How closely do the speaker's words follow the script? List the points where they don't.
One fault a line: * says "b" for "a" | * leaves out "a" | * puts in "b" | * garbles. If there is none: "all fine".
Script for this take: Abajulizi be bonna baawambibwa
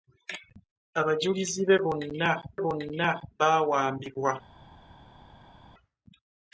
* puts in "bonna"